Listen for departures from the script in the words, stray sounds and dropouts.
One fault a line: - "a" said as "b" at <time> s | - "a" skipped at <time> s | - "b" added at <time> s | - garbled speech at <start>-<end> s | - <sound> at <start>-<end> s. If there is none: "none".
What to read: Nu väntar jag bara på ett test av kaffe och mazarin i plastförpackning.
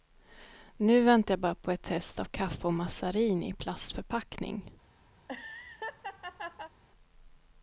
- laugh at 5.2-6.7 s